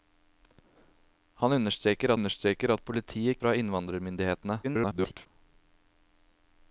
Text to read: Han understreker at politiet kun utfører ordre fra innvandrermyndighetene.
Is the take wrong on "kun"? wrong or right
wrong